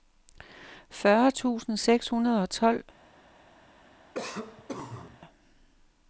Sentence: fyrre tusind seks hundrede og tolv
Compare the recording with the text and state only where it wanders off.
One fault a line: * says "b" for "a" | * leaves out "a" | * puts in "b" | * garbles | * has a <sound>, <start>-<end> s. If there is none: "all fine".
* has a cough, 4.1-5.2 s